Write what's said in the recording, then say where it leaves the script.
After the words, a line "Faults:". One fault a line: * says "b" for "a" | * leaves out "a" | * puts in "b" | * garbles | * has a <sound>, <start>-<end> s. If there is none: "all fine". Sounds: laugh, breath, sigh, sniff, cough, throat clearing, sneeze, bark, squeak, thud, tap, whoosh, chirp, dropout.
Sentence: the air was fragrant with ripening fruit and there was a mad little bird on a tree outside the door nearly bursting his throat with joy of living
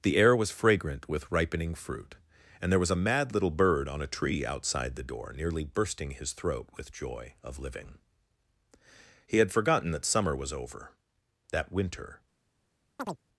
the air was fragrant with ripening fruit and there was a mad little bird on a tree outside the door nearly bursting his throat with joy of living he had forgotten that summer was over that winter
Faults:
* puts in "he had forgotten that summer was over that winter"
* has a chirp, 13.0-13.2 s